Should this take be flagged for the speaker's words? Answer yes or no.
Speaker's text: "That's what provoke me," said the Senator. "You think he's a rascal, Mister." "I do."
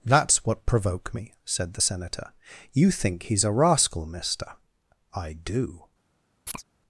no